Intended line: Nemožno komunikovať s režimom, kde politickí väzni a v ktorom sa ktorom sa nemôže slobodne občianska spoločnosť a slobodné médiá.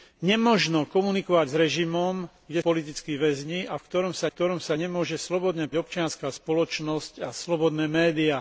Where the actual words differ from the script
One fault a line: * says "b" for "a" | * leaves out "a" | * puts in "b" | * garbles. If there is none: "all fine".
all fine